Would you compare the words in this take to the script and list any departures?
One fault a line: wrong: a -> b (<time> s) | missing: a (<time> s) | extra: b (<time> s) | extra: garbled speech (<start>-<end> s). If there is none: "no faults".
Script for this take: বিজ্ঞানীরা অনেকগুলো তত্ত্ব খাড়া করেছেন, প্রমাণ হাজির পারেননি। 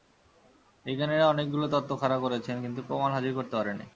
extra: কিন্তু (2.6 s)
extra: করতে (3.4 s)